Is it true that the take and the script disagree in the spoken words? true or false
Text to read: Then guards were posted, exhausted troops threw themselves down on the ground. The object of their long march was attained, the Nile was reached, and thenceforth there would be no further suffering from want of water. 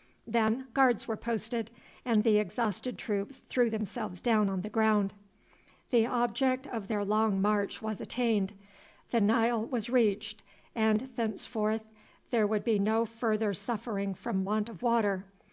true